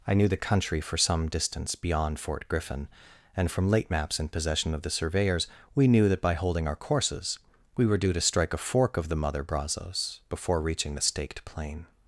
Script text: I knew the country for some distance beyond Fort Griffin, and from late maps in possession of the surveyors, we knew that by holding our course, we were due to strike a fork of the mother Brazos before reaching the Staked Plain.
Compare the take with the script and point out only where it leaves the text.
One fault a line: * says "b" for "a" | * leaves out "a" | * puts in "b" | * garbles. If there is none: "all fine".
* says "courses" for "course"